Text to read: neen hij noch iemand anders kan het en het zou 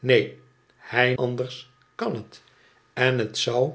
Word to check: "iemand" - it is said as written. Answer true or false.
false